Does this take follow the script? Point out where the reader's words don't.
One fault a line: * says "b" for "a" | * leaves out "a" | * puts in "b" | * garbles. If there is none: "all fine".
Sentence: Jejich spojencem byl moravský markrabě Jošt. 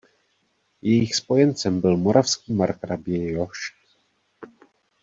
all fine